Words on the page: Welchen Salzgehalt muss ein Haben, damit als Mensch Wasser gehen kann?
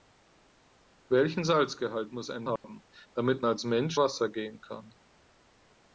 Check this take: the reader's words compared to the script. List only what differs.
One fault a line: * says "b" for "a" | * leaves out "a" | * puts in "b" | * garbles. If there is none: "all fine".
all fine